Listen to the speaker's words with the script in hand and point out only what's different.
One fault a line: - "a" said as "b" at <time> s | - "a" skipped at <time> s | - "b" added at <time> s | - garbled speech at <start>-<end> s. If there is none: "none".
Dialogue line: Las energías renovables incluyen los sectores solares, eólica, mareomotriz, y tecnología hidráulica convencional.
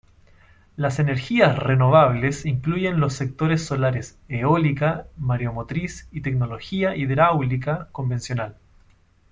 none